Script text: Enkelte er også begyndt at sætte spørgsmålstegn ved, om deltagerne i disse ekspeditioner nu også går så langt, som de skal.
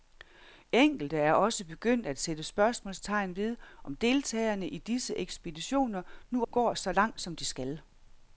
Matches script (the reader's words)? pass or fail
fail